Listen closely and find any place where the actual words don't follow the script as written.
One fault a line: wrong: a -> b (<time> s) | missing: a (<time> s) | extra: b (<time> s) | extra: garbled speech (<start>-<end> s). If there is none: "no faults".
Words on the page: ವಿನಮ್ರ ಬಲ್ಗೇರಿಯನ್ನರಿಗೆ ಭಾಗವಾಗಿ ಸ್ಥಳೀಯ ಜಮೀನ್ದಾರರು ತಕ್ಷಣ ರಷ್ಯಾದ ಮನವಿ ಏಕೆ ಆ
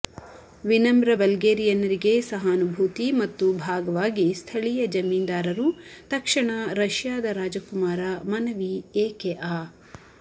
extra: ಸಹಾನುಭೂತಿ ಮತ್ತು (2.3 s)
extra: ರಾಜಕುಮಾರ (7.4 s)